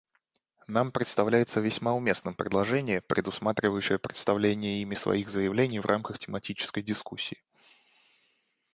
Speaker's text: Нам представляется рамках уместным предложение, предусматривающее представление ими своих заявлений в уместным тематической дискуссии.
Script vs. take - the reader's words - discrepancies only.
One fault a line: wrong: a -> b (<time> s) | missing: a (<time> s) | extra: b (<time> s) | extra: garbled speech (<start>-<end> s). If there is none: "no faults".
wrong: рамках -> весьма (1.6 s)
wrong: уместным -> рамках (5.9 s)